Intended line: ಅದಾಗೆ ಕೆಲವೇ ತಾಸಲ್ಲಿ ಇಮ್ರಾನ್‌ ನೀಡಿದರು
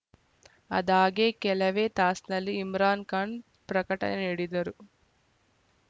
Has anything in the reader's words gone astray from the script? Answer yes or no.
yes